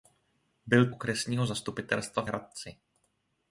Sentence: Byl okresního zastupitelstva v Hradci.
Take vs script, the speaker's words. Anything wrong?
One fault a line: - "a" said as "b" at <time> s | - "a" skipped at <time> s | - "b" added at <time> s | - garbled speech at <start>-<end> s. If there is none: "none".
none